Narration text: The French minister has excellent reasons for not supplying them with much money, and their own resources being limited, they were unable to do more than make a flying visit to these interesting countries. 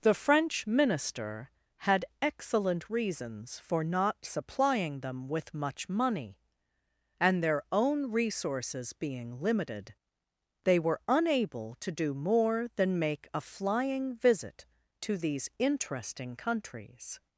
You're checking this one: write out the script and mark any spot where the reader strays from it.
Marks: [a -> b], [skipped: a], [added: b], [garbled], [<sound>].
The French minister [has -> had] excellent reasons for not supplying them with much money, and their own resources being limited, they were unable to do more than make a flying visit to these interesting countries.